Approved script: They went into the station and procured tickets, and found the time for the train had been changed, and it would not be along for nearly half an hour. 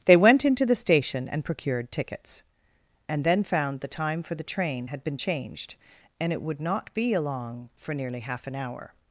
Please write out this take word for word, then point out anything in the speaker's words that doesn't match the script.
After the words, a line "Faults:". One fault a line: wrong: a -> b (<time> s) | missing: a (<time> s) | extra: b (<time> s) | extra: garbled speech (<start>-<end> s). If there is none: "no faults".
They went into the station and procured tickets, and then found the time for the train had been changed, and it would not be along for nearly half an hour.
Faults:
extra: then (3.2 s)